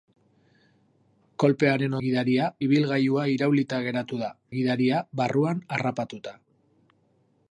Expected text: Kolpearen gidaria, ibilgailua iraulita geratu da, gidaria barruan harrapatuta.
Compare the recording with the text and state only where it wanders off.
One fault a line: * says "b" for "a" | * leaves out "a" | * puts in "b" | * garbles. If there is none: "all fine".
all fine